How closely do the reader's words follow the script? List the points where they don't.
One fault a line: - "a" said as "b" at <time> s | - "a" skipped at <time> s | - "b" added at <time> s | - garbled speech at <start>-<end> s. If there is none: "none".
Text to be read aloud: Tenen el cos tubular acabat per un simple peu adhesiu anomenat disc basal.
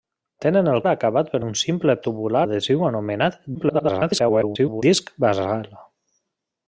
- "cos tubular" skipped at 0.8 s
- "peu" said as "tubular" at 2.1 s
- garbled speech at 3.5-4.8 s